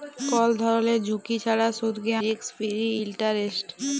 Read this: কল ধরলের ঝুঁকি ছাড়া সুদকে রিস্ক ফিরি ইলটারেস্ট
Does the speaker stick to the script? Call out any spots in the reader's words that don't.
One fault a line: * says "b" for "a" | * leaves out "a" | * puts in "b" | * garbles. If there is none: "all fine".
all fine